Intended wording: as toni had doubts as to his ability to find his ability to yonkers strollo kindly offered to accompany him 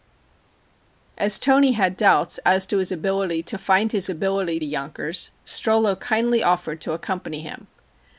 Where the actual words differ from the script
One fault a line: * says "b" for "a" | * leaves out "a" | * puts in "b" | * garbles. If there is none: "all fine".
all fine